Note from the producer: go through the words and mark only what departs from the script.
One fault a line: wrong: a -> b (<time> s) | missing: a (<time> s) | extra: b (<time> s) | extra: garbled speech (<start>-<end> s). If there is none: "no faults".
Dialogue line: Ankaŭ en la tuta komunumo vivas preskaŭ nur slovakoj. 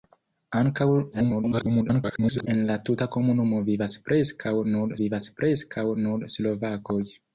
extra: garbled speech (1.1-2.5 s)
extra: vivas preskaŭ nur (5.0 s)